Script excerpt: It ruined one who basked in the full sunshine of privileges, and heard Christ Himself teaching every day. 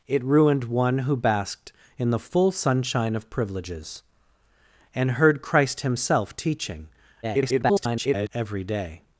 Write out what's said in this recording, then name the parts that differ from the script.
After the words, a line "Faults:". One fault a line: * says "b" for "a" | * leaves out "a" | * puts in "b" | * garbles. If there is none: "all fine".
It ruined one who basked in the full sunshine of privileges, and heard Christ Himself teaching [garbled] every day.
Faults:
* garbles